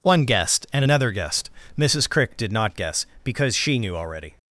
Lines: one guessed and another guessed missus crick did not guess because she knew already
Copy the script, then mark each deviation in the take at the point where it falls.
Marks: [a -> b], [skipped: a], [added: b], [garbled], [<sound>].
one guessed and another guessed missus crick did not guess because she knew already